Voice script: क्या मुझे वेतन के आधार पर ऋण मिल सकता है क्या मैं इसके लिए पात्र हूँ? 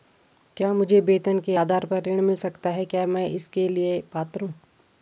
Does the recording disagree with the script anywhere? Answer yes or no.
no